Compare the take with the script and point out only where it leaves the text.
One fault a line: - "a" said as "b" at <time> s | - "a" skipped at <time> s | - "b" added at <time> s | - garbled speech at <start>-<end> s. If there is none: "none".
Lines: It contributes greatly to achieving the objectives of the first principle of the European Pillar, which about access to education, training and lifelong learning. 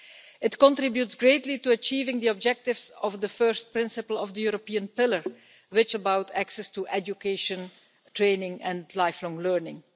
none